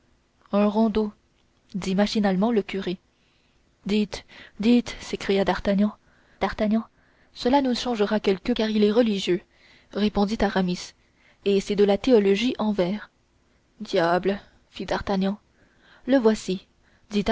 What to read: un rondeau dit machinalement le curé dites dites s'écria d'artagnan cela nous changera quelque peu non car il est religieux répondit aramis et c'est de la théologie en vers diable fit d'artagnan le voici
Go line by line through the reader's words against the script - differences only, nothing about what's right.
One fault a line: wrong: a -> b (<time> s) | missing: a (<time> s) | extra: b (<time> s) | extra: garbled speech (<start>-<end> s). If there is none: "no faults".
extra: d'artagnan (6.4 s)
missing: peu non (8.5 s)